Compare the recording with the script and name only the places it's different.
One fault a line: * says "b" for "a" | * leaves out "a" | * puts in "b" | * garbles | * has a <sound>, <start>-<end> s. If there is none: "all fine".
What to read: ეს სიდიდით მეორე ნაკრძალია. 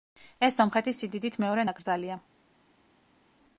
* puts in "სომხეთის"